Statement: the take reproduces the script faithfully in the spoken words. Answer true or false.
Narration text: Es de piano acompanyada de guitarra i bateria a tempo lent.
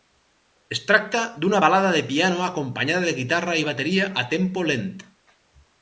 false